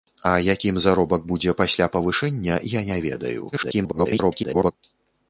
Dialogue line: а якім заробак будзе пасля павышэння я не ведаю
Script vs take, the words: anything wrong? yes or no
yes